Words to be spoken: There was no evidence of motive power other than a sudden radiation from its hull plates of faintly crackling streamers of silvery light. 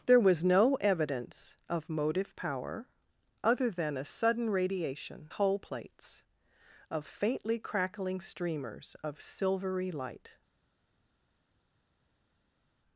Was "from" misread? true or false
true